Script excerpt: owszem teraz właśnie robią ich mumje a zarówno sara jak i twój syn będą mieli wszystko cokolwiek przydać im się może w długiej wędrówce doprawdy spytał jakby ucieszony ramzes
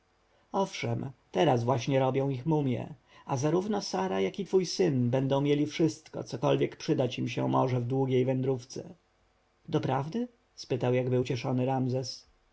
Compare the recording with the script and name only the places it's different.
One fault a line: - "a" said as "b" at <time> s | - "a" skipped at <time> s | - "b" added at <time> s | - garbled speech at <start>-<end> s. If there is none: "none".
none